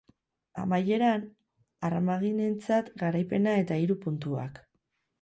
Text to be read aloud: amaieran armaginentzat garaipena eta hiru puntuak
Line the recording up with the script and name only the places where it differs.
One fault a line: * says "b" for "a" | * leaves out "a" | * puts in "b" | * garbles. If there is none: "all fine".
all fine